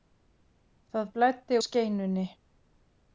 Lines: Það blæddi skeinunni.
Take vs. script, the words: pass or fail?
pass